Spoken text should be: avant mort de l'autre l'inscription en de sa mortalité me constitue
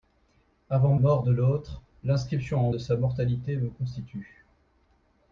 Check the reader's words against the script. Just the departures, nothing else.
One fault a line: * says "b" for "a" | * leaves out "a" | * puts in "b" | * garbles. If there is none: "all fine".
all fine